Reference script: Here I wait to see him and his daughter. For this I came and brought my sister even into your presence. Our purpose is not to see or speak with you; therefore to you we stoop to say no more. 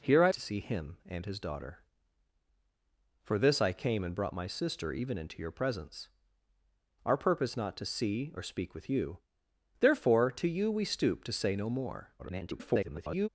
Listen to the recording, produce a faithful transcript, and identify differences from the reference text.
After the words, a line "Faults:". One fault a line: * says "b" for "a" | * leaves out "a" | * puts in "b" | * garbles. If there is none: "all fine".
Here I to see him and his daughter. For this I came and brought my sister even into your presence. Our purpose not to see or speak with you; therefore to you we stoop to say no more. [garbled]
Faults:
* leaves out "wait"
* leaves out "is"
* garbles